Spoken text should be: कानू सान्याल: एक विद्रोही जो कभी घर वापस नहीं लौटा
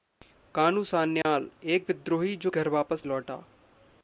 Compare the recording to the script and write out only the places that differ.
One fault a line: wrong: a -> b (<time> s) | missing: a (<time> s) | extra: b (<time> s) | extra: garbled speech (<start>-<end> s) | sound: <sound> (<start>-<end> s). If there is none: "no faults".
sound: dropout (1.2-1.2 s)
missing: कभी (2.5 s)
missing: नहीं (3.0 s)